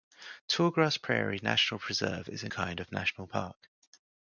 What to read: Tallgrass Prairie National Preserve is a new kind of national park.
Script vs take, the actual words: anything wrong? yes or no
yes